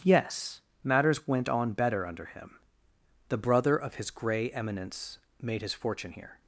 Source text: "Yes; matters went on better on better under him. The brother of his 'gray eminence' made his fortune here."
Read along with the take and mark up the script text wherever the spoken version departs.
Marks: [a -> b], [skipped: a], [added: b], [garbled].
"Yes; matters went on better [skipped: on better] under him. The brother of his 'gray eminence' made his fortune here."